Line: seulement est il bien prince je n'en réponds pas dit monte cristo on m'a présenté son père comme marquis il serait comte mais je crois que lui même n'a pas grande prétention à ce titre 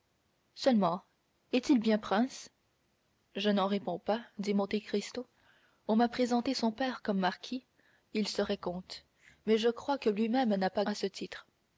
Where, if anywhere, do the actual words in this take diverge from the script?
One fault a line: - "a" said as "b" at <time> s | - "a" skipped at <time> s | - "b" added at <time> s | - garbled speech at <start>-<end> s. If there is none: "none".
- "grande prétention" skipped at 10.8 s